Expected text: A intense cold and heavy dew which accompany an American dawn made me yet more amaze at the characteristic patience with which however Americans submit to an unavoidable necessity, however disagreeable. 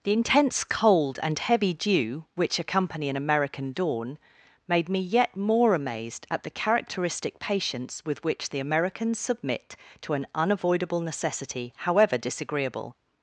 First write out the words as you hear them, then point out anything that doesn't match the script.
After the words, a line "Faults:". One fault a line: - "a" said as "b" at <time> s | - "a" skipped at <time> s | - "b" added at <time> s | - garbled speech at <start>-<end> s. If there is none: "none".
The intense cold and heavy dew which accompany an American dawn made me yet more amazed at the characteristic patience with which the Americans submit to an unavoidable necessity, however disagreeable.
Faults:
- "A" said as "The" at 0.0 s
- "amaze" said as "amazed" at 5.8 s
- "however" said as "the" at 8.5 s